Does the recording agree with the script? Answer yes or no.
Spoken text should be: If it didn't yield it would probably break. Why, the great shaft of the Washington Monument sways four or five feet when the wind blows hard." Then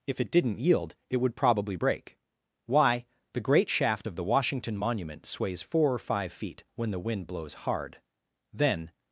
yes